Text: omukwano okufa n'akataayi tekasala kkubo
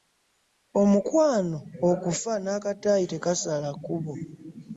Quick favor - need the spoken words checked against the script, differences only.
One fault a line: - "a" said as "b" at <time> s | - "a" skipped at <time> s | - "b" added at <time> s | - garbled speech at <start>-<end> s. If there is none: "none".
none